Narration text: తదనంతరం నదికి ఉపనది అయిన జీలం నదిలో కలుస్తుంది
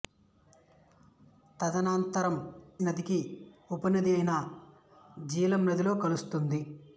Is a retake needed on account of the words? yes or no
no